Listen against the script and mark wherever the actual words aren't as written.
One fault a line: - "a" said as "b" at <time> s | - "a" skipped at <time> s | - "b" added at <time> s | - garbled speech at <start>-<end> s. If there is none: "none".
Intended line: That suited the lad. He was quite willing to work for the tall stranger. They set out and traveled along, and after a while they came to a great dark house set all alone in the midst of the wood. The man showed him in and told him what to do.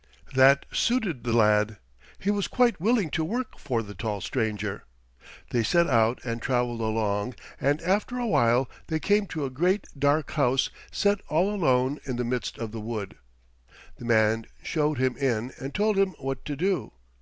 none